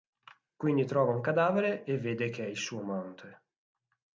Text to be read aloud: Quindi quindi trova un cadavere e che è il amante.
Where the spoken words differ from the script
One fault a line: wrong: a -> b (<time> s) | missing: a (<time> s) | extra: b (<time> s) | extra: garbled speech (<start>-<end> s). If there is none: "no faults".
missing: quindi (0.8 s)
extra: vede (1.9 s)
extra: suo (2.6 s)